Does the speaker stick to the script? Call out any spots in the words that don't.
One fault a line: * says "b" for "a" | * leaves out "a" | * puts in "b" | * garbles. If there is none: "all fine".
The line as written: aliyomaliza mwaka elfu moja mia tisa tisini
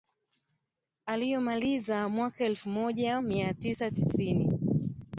all fine